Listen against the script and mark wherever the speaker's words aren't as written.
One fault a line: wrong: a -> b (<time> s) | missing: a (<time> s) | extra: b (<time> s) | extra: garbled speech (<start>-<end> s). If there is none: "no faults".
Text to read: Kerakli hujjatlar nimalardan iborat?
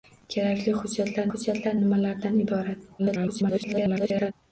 extra: hujjatlar (1.3 s)
extra: garbled speech (3.0-4.3 s)